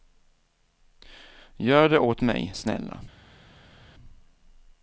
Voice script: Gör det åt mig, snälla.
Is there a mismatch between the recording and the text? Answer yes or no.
no